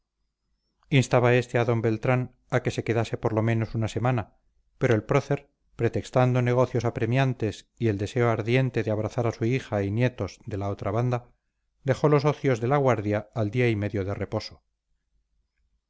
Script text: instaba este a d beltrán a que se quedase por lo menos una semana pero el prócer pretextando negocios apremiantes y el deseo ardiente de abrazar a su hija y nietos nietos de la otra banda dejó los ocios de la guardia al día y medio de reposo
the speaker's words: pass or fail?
fail